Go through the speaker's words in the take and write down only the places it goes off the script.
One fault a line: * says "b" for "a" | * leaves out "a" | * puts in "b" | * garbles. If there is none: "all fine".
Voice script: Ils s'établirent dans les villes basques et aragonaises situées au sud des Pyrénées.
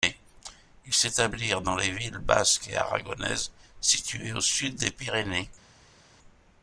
all fine